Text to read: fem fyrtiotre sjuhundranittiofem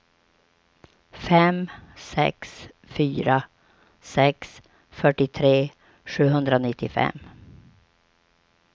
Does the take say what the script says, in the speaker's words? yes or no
no